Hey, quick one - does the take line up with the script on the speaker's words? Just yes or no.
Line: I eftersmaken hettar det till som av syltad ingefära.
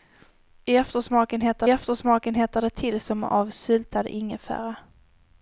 no